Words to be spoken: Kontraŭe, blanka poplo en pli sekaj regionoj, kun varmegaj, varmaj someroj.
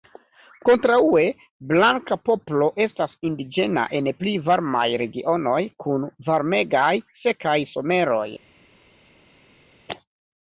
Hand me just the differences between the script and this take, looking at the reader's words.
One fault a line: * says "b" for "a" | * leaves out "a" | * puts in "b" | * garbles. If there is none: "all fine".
* puts in "estas indiĝena"
* says "varmaj" for "sekaj"
* says "sekaj" for "varmaj"